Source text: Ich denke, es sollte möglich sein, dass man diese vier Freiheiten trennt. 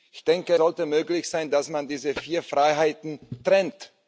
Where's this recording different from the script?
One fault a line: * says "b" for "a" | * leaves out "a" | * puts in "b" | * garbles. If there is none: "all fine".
* leaves out "es"